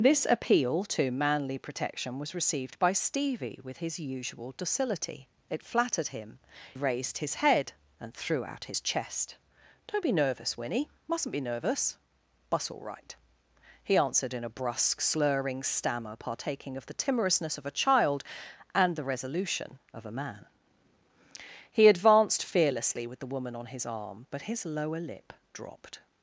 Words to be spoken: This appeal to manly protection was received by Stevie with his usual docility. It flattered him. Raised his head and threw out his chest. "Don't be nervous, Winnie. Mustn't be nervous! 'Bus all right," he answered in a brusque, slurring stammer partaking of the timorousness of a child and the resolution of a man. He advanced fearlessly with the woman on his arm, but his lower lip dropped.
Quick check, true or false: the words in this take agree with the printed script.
true